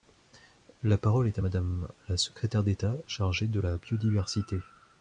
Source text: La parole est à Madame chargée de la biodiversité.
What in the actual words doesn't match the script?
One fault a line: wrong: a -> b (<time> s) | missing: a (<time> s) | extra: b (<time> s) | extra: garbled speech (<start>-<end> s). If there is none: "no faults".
extra: la secrétaire d'État (2.1 s)